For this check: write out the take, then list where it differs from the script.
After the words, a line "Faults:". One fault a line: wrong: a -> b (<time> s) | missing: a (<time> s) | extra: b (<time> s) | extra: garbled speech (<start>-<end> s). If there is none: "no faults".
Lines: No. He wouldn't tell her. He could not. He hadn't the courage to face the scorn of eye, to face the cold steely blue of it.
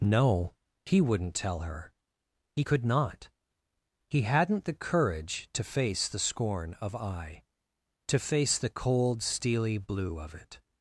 No. He wouldn't tell her. He could not. He hadn't the courage to face the scorn of eye, to face the cold steely blue of it.
Faults:
no faults